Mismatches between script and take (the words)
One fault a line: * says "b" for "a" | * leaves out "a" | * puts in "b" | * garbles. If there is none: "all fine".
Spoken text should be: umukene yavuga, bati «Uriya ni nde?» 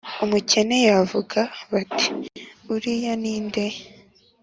all fine